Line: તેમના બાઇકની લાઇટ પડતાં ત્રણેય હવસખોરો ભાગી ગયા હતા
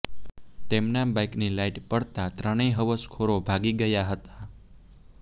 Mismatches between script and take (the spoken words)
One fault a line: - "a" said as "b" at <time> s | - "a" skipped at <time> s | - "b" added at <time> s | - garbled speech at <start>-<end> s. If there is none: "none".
none